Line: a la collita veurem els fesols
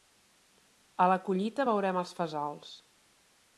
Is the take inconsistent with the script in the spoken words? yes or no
no